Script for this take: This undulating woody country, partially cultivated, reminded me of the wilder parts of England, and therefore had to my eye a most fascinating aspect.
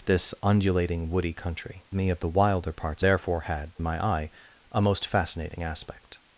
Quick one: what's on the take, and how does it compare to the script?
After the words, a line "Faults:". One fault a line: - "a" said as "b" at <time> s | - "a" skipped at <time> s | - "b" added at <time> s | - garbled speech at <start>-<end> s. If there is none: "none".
This undulating woody country, me of the wilder parts therefore had my eye a most fascinating aspect.
Faults:
- "partially cultivated reminded" skipped at 1.9 s
- "of England and" skipped at 3.0 s
- "to" skipped at 3.8 s